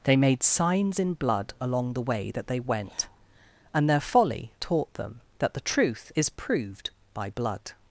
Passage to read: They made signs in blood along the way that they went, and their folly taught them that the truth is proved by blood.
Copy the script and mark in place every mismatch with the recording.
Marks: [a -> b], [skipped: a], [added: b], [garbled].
They made signs in blood along the way that they went, and their folly taught them that the truth is proved by blood.